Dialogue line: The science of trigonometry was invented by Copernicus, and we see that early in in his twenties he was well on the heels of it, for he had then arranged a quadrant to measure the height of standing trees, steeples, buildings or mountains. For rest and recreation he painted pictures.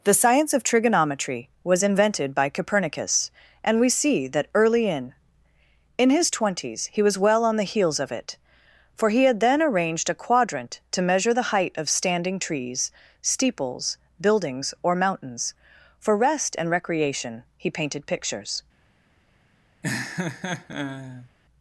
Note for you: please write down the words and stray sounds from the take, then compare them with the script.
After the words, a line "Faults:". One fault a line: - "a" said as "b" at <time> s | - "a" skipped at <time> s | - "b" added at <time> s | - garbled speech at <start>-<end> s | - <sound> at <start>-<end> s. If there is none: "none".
The science of trigonometry was invented by Copernicus, and we see that early in in his twenties he was well on the heels of it, for he had then arranged a quadrant to measure the height of standing trees, steeples, buildings or mountains. For rest and recreation he painted pictures.
Faults:
- laugh at 19.8-21.3 s